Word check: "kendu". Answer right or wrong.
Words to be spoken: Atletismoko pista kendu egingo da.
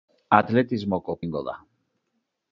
wrong